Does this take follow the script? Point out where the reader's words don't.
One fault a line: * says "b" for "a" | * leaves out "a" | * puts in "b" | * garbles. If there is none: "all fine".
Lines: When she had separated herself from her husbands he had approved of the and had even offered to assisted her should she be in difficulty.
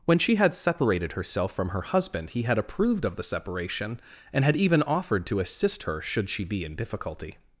* says "husband" for "husbands"
* puts in "separation"
* says "assist" for "assisted"